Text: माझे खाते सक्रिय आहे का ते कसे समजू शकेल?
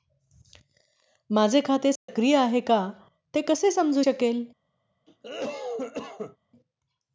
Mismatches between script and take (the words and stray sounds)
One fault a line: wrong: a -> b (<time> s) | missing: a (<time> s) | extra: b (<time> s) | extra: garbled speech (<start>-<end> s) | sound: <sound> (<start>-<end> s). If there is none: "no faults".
sound: dropout (2.0-2.1 s)
sound: cough (5.1-6.4 s)